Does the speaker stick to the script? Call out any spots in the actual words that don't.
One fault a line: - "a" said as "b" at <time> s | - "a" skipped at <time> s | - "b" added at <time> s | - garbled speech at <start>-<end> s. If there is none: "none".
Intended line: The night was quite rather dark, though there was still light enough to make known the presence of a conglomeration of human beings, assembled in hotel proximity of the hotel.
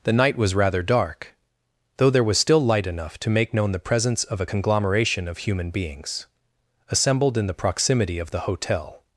- "quite" skipped at 0.6 s
- "hotel" said as "the" at 7.5 s